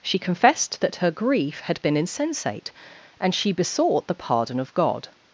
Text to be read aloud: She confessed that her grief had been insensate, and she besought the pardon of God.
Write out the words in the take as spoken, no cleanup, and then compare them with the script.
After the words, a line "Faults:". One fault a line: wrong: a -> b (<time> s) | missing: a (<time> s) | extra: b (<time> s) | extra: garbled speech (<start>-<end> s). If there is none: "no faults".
She confessed that her grief had been insensate, and she besought the pardon of God.
Faults:
no faults